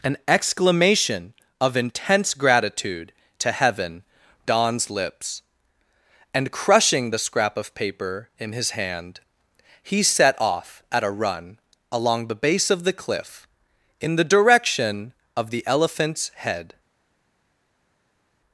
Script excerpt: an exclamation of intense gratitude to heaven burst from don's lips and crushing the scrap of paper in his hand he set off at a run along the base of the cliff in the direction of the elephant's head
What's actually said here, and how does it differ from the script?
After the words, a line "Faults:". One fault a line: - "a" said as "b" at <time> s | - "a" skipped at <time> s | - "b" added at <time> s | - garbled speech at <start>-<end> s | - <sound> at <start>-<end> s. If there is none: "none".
an exclamation of intense gratitude to heaven don's lips and crushing the scrap of paper in his hand he set off at a run along the base of the cliff in the direction of the elephant's head
Faults:
- "burst from" skipped at 4.0 s